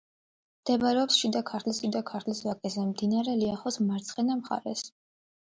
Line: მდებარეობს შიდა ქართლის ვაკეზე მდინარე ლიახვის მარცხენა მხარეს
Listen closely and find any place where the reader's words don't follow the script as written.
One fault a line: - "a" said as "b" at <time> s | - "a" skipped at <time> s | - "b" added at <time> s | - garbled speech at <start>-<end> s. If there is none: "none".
- "შიდა ქართლის" added at 1.8 s